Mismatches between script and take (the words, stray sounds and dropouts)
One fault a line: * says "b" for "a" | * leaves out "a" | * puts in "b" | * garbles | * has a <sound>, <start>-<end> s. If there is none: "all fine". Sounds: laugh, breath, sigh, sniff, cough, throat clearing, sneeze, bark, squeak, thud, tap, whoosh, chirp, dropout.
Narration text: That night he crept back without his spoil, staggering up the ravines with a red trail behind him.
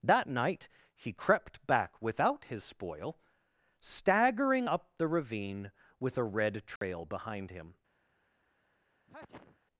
* says "ravine" for "ravines"
* has a dropout, 6.8-6.8 s
* has a sneeze, 9.1-9.6 s